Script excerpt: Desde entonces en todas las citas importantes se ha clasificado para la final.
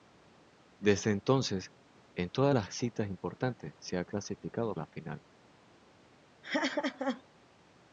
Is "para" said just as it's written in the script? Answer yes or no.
no